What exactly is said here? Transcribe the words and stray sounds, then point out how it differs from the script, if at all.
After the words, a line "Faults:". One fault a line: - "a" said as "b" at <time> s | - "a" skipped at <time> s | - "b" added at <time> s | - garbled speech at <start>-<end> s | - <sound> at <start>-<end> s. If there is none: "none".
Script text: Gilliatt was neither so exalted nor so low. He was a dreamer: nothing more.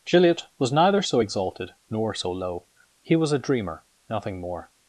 Gilliatt was neither so exalted nor so low. He was a dreamer: nothing more.
Faults:
none